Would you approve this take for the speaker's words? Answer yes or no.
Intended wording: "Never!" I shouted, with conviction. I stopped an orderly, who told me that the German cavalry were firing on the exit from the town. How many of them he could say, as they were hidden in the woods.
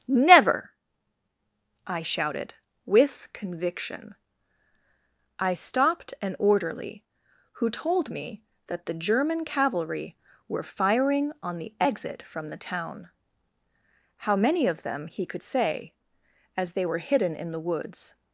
yes